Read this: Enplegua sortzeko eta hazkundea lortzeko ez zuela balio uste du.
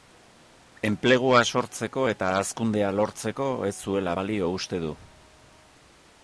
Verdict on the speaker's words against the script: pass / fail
pass